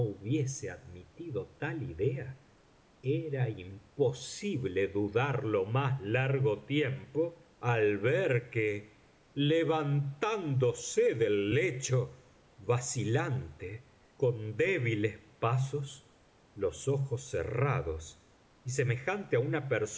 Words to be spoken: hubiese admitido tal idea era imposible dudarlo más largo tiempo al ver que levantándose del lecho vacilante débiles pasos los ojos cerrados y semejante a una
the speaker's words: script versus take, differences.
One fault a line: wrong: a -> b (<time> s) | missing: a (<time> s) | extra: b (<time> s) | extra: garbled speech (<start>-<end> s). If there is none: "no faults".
extra: con (14.2 s)